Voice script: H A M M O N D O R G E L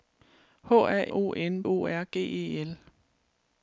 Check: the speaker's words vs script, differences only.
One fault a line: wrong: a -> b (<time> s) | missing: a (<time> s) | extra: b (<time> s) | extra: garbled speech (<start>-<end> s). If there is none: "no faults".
missing: M M (1.0 s)
missing: D (1.7 s)